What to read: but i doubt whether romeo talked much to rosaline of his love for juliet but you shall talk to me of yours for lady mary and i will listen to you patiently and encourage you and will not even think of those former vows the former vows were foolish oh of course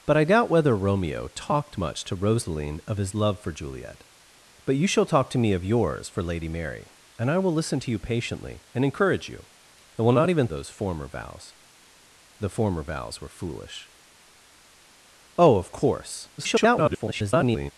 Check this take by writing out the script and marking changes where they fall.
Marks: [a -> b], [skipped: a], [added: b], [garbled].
but i doubt whether romeo talked much to rosaline of his love for juliet but you shall talk to me of yours for lady mary and i will listen to you patiently and encourage you and will not even [skipped: think of] those former vows the former vows were foolish oh of course [garbled]